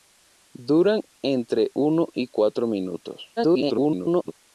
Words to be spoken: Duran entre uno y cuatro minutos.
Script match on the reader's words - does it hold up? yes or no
no